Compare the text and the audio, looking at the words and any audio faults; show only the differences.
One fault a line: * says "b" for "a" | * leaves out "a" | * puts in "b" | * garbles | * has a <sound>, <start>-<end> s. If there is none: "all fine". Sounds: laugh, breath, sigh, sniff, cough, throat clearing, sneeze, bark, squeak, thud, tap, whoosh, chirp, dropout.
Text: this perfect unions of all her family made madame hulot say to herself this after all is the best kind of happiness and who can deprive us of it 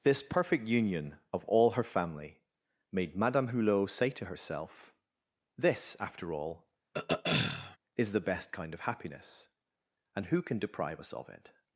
* says "union" for "unions"
* has a throat clearing, 6.9-7.8 s